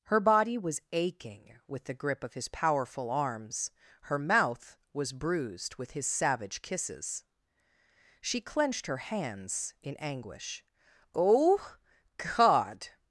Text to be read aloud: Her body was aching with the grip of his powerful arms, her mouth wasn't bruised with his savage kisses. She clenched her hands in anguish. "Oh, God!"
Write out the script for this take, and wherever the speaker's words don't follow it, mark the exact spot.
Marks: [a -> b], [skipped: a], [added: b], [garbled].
Her body was aching with the grip of his powerful arms, her mouth [wasn't -> was] bruised with his savage kisses. She clenched her hands in anguish. "Oh, God!"